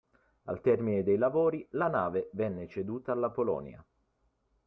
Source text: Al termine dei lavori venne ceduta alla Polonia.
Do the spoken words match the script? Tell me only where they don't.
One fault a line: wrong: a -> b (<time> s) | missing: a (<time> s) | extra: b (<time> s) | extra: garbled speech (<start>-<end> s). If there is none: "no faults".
extra: la nave (1.7 s)